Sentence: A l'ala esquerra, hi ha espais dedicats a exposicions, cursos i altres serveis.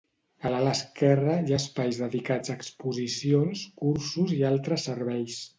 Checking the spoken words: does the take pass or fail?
pass